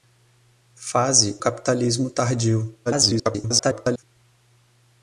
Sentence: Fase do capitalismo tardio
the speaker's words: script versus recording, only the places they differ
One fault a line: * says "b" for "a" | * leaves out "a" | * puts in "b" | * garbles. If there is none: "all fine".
* leaves out "do"
* garbles